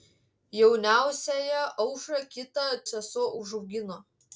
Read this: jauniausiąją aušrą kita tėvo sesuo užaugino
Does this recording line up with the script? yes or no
no